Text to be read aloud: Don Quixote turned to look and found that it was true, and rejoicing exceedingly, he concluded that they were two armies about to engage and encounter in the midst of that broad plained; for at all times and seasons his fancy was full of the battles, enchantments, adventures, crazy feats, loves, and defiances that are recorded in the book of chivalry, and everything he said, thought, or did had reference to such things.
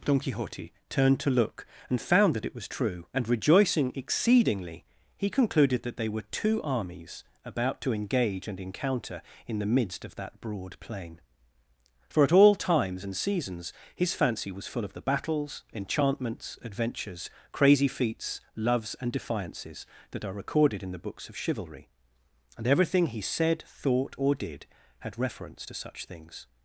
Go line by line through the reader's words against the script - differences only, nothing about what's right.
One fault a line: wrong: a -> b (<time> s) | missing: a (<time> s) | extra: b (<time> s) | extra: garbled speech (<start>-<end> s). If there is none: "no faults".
wrong: plained -> plain (10.8 s)
wrong: book -> books (21.0 s)